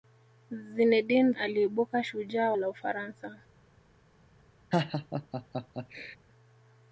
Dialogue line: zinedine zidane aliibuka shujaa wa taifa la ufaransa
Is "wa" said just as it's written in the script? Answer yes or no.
no